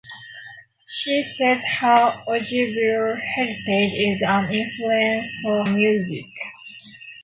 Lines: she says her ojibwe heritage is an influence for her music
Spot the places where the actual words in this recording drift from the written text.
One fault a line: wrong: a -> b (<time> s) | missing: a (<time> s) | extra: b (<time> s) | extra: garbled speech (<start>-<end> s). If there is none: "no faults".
missing: her (5.6 s)